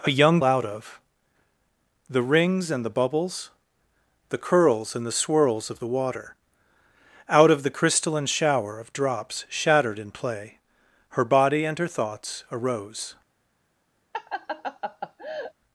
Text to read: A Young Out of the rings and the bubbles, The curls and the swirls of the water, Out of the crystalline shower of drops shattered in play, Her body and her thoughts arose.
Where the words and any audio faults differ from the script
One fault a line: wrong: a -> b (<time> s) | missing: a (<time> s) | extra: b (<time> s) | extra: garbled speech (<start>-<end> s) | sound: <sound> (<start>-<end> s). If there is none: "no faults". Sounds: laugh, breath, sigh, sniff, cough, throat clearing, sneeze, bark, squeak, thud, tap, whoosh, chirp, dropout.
sound: laugh (14.1-15.5 s)